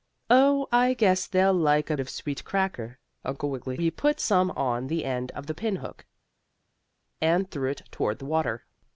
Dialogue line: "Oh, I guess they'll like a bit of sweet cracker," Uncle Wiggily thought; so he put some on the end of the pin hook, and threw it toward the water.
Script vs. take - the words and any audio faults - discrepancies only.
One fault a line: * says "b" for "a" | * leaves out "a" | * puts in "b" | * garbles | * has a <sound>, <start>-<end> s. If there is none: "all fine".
* leaves out "bit"
* leaves out "thought so"